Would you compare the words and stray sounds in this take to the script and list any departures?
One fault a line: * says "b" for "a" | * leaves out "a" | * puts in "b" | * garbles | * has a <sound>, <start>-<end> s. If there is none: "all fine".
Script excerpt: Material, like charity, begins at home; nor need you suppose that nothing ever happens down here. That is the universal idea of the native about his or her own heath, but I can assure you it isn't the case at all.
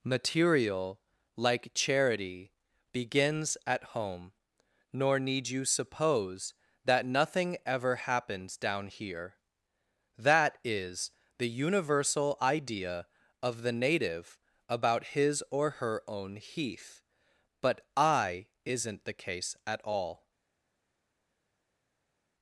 * leaves out "can assure you it"